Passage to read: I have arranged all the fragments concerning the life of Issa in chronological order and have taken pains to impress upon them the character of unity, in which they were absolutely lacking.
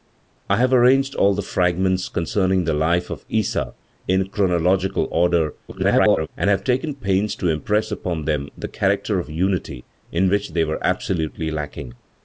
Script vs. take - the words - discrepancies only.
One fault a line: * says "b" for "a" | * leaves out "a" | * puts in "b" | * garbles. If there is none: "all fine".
* garbles